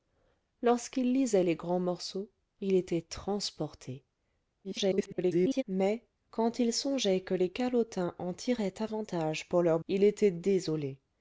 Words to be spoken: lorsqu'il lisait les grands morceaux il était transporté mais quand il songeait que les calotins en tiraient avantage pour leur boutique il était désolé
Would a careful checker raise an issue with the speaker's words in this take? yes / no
yes